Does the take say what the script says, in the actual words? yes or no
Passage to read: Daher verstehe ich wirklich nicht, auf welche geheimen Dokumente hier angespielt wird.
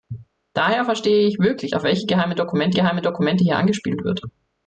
no